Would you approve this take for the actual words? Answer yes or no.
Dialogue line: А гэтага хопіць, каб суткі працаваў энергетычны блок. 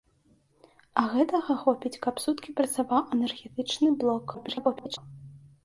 no